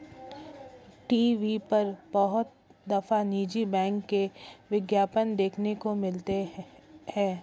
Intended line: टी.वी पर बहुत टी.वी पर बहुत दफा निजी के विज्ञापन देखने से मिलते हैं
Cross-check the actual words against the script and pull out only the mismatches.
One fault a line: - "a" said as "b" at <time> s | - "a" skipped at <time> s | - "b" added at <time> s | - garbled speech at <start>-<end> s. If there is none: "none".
- "टी.वी पर बहुत" skipped at 2.5 s
- "बैंक" added at 3.7 s
- "से" said as "को" at 5.8 s